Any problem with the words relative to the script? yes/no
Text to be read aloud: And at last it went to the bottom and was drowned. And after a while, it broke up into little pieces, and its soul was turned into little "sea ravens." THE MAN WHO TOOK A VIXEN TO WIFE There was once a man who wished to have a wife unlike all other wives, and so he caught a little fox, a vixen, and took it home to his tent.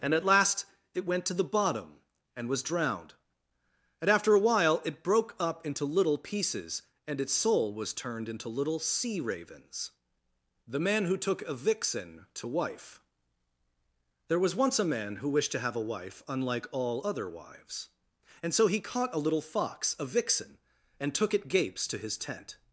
yes